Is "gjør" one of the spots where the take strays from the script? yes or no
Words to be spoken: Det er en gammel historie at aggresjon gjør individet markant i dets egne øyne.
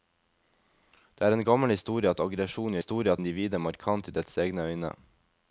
yes